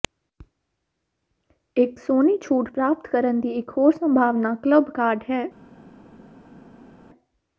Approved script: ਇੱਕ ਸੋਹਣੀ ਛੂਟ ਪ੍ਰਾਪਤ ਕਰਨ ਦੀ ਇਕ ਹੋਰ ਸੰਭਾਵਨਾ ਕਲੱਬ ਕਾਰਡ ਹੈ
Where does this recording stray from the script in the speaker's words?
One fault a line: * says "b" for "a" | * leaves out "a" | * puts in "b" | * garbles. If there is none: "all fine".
all fine